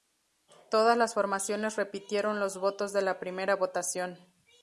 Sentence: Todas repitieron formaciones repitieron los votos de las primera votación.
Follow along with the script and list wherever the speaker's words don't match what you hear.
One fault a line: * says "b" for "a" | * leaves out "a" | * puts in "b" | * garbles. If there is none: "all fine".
* says "las" for "repitieron"
* says "la" for "las"